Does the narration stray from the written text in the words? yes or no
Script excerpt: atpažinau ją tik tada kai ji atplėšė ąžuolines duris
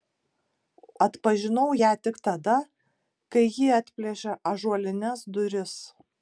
no